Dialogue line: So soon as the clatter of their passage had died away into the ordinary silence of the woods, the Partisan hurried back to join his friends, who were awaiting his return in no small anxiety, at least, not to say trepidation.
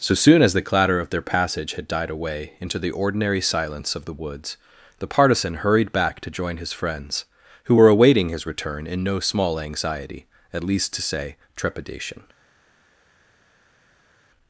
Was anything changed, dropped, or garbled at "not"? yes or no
yes